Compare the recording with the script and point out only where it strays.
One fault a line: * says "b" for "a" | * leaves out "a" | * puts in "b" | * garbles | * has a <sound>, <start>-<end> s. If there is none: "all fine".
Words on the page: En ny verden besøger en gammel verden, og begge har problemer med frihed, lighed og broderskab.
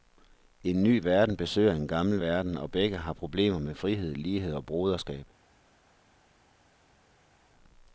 all fine